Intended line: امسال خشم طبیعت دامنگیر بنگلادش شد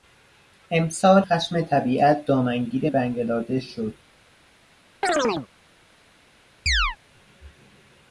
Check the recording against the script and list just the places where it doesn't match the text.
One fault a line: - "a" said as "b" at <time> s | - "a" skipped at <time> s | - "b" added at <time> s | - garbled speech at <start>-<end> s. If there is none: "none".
none